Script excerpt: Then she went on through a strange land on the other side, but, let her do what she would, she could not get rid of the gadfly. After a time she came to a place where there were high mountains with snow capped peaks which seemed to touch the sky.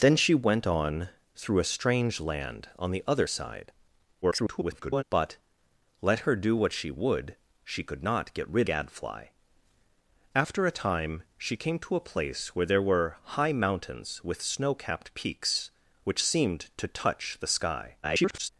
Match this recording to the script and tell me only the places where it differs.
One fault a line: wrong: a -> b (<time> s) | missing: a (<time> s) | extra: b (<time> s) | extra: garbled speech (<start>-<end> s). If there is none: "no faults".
extra: garbled speech (4.2-5.0 s)
missing: of the (8.7 s)
extra: garbled speech (18.0-18.5 s)